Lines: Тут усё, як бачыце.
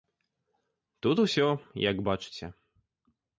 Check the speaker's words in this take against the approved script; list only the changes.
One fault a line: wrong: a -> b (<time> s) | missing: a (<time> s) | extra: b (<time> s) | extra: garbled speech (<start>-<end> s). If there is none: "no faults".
no faults